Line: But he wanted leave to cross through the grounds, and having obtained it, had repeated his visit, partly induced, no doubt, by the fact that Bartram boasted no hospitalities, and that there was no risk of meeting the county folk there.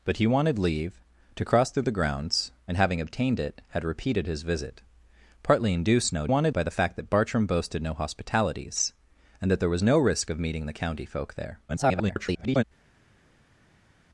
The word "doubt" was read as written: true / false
false